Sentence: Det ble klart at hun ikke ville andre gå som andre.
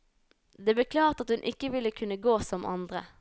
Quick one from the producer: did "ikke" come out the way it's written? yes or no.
yes